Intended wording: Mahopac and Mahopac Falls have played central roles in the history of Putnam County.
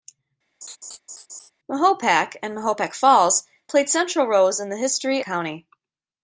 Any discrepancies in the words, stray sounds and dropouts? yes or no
yes